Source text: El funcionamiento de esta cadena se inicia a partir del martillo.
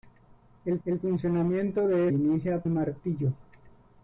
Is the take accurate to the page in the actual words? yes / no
no